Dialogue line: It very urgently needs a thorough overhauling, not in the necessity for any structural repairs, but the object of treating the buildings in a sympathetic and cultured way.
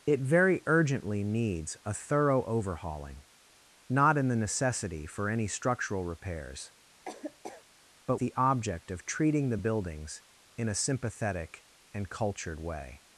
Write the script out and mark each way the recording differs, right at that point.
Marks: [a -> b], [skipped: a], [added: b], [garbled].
It very urgently needs a thorough overhauling, not in the necessity for any structural repairs, but the object of treating the buildings in a sympathetic and cultured way.